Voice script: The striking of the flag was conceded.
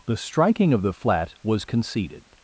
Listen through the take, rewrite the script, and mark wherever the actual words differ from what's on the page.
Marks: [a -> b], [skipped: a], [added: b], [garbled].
The striking of the [flag -> flat] was conceded.